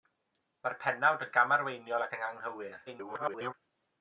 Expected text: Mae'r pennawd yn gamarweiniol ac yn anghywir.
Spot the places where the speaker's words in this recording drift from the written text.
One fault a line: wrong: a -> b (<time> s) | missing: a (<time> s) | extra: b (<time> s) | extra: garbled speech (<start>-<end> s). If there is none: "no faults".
extra: garbled speech (2.9-3.5 s)